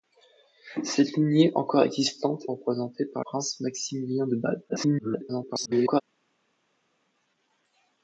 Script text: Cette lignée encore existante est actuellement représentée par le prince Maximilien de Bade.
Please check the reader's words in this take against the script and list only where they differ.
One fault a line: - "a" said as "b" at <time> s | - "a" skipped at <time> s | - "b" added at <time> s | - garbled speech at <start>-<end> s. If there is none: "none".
- "est actuellement" skipped at 2.5 s
- "le" skipped at 3.3 s
- garbled speech at 4.7-6.0 s